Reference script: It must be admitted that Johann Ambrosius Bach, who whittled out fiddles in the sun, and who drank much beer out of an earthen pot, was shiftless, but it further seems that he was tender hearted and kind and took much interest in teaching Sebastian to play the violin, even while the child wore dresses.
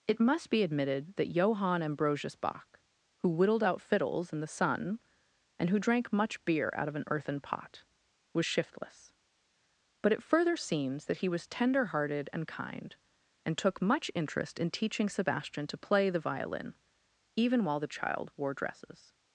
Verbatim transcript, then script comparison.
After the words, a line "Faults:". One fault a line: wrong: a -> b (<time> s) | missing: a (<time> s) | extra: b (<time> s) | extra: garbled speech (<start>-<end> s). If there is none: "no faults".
It must be admitted that Johann Ambrosius Bach, who whittled out fiddles in the sun, and who drank much beer out of an earthen pot, was shiftless, but it further seems that he was tender hearted and kind and took much interest in teaching Sebastian to play the violin, even while the child wore dresses.
Faults:
no faults